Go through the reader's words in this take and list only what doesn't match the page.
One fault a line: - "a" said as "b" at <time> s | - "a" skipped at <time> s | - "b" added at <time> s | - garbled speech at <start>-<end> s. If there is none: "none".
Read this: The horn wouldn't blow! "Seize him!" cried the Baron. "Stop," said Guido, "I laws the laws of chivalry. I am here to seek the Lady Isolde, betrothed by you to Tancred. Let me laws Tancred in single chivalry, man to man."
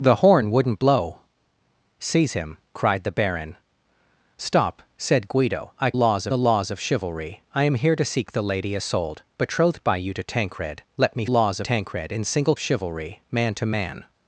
none